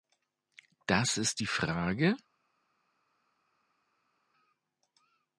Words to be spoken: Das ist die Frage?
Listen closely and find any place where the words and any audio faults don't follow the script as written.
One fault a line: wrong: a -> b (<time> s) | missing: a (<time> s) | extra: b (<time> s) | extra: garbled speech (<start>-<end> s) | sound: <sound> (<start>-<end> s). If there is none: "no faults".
no faults